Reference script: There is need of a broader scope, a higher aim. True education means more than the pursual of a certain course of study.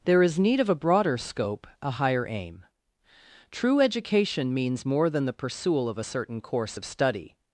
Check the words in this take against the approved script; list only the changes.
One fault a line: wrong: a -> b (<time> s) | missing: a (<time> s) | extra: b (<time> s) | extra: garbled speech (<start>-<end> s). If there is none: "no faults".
no faults